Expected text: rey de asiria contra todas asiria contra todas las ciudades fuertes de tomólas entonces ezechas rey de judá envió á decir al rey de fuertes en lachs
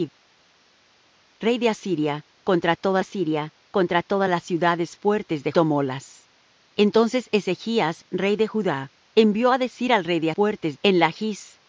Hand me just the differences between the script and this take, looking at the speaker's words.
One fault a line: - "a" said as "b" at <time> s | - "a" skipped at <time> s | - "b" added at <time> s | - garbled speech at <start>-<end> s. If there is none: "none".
none